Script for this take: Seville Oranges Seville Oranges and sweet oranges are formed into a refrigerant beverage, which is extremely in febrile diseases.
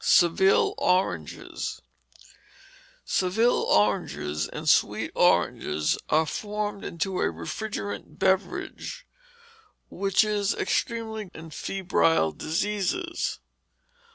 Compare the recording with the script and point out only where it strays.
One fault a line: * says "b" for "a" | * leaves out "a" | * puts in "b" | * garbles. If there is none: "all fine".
all fine